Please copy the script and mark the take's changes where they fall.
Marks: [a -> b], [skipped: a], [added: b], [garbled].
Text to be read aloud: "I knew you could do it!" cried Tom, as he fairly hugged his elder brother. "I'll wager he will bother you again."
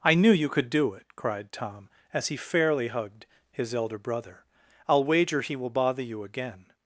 "I knew you could do it!" cried Tom, as he fairly hugged his elder brother. "I'll wager he will bother you again."